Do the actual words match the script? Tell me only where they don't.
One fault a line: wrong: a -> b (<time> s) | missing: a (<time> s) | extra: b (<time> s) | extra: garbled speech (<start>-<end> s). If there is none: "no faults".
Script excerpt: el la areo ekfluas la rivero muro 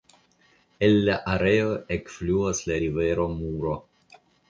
no faults